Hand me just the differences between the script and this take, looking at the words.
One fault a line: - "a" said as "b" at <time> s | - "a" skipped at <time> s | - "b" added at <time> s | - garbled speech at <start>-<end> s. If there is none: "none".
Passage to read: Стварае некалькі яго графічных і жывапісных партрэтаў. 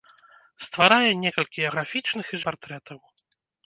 - "яго" skipped at 1.6 s
- "жывапісных" skipped at 2.4 s